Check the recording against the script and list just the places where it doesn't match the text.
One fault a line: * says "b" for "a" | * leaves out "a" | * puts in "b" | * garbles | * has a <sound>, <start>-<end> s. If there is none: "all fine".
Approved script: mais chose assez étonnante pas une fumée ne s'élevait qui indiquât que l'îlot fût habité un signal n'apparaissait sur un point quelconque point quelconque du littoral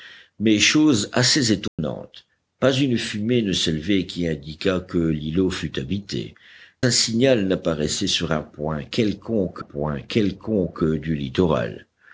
* has a dropout, 1.7-1.8 s